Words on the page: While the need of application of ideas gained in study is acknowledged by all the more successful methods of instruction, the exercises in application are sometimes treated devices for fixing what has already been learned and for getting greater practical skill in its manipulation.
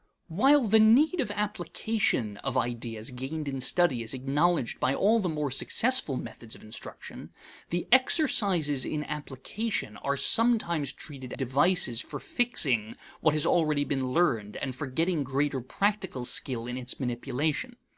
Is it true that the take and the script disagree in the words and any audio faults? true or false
false